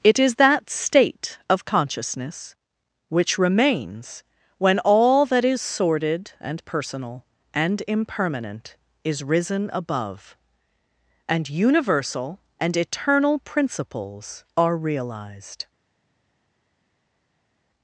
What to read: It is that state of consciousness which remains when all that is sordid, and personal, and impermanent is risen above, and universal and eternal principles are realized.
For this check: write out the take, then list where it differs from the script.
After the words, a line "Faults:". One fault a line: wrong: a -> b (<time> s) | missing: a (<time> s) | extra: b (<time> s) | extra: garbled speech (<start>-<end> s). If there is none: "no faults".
It is that state of consciousness which remains when all that is sordid, and personal, and impermanent is risen above, and universal and eternal principles are realized.
Faults:
no faults